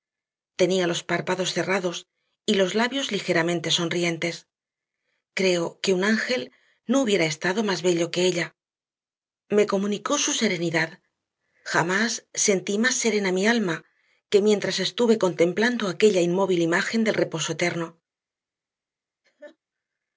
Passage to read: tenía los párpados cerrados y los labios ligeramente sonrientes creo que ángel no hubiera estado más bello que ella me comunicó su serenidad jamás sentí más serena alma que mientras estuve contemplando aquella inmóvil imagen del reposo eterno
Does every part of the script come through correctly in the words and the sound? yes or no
no